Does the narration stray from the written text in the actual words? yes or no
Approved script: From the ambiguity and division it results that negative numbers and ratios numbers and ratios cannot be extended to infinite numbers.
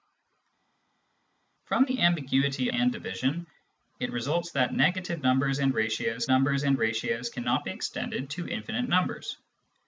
no